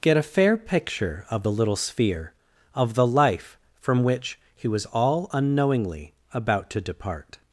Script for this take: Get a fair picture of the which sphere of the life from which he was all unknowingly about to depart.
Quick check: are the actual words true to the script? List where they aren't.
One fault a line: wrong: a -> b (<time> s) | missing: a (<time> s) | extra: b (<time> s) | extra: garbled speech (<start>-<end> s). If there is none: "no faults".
wrong: which -> little (1.5 s)